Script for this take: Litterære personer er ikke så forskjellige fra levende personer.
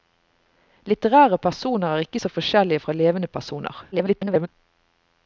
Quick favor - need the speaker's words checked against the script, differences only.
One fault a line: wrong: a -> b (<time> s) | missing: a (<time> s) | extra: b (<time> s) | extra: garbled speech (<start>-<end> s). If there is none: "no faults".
extra: garbled speech (3.9-4.5 s)